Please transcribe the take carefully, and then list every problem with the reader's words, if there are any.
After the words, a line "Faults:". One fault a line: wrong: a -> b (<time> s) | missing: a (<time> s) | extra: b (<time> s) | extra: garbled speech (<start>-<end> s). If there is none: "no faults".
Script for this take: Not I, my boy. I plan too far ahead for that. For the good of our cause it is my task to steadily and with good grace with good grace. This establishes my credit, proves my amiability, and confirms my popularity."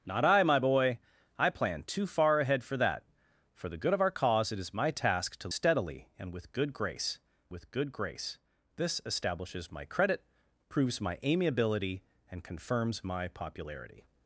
Not I, my boy. I plan too far ahead for that. For the good of our cause it is my task to steadily and with good grace with good grace. This establishes my credit, proves my amiability, and confirms my popularity."
Faults:
no faults